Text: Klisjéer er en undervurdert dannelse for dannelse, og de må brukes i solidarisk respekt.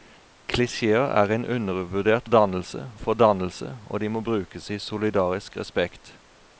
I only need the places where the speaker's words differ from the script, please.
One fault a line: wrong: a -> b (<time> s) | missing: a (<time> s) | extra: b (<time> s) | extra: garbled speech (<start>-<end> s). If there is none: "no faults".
no faults